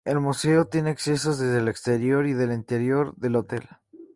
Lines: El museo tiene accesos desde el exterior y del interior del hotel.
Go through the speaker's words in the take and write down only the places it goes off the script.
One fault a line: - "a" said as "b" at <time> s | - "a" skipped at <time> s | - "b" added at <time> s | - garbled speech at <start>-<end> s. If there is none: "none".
none